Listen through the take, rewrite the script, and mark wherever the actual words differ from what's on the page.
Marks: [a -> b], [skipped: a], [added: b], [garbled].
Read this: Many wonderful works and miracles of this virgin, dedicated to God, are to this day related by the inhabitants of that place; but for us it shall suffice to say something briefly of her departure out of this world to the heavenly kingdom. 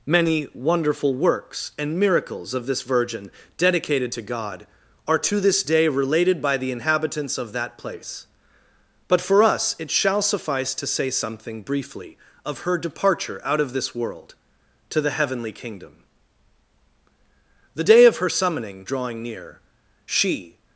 Many wonderful works and miracles of this virgin, dedicated to God, are to this day related by the inhabitants of that place; but for us it shall suffice to say something briefly of her departure out of this world to the heavenly kingdom. [added: The day of her summoning drawing near she]